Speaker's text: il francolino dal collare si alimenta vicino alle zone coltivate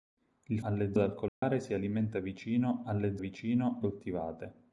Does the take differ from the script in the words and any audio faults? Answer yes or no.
yes